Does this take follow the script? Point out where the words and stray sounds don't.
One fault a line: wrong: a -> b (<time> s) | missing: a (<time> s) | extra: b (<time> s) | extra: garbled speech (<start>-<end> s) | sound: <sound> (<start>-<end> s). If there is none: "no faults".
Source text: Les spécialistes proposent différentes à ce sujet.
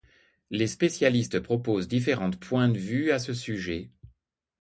extra: points de vue (2.4 s)